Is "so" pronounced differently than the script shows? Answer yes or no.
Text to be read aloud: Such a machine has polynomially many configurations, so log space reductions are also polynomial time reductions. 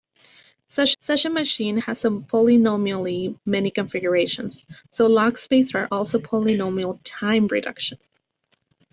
no